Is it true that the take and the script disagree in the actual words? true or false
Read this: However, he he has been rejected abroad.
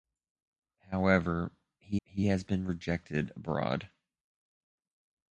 false